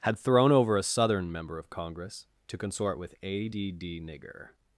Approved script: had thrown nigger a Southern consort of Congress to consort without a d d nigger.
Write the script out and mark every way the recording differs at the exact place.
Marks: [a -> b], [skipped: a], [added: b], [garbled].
had thrown [nigger -> over] a Southern [consort -> member] of Congress to consort [without -> with] a d d nigger.